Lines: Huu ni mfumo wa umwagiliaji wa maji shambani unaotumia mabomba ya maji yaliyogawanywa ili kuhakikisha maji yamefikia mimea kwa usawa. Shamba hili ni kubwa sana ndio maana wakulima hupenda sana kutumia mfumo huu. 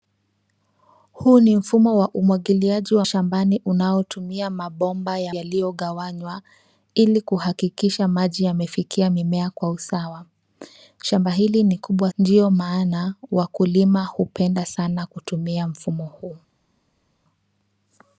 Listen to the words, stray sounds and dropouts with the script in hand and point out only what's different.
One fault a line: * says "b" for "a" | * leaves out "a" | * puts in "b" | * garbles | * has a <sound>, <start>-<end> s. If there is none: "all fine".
* leaves out "maji"
* leaves out "maji"
* leaves out "sana"